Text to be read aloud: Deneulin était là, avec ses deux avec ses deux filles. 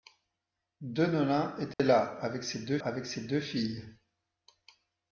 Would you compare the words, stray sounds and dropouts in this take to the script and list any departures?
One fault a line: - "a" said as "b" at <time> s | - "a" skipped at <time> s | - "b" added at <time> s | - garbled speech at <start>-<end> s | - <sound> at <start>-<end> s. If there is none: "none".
- dropout at 1.7-1.8 s